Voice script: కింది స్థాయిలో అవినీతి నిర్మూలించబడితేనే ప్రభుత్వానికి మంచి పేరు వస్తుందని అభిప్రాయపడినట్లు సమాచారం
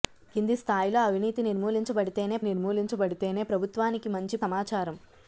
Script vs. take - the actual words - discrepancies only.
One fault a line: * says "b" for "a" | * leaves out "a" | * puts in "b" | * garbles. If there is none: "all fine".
* puts in "నిర్మూలించబడితేనే"
* leaves out "పేరు వస్తుందని అభిప్రాయపడినట్లు"